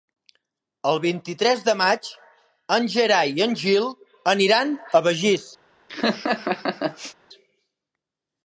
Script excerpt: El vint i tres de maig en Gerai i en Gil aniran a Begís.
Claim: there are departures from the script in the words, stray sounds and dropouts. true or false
true